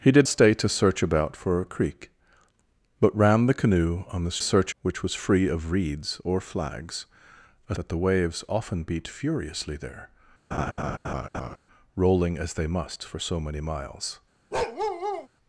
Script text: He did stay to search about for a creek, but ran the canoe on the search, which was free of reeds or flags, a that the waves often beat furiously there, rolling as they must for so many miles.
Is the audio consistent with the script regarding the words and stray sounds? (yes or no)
no